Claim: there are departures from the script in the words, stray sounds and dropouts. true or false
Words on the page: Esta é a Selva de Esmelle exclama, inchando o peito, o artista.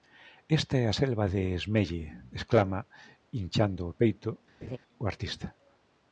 true